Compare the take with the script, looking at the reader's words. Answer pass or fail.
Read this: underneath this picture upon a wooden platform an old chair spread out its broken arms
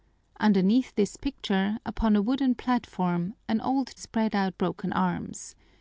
fail